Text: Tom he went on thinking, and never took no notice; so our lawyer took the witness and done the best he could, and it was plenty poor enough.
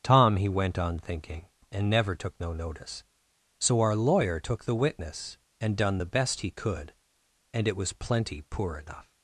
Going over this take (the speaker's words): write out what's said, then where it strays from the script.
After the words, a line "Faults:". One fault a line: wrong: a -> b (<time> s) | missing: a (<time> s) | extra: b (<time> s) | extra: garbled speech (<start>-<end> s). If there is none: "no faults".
Tom he went on thinking, and never took no notice; so our lawyer took the witness and done the best he could, and it was plenty poor enough.
Faults:
no faults